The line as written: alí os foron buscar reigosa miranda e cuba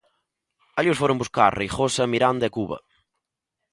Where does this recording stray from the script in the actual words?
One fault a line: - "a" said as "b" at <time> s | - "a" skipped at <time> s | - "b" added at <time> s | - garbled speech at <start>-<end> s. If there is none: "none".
none